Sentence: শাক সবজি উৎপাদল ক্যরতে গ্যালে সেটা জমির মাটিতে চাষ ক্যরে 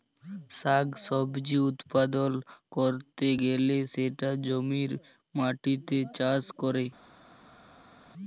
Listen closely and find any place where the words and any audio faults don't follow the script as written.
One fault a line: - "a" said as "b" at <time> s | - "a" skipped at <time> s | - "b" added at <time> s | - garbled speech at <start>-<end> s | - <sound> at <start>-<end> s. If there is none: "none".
none